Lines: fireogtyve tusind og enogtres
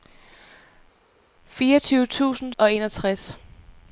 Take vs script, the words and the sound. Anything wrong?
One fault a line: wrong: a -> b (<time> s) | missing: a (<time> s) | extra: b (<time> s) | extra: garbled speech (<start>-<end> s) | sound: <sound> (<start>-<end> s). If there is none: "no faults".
no faults